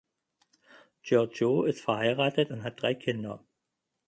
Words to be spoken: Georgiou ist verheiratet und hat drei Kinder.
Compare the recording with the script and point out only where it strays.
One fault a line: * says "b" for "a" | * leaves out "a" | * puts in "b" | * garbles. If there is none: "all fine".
all fine